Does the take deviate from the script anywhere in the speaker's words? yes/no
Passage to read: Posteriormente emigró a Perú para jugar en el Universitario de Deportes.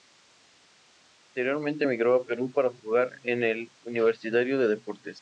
no